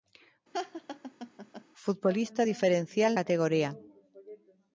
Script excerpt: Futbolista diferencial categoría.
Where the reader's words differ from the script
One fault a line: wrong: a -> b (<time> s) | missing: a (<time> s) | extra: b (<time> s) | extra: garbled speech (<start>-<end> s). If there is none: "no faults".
no faults